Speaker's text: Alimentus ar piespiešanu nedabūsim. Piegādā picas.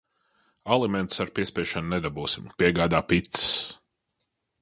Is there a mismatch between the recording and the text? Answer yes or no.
no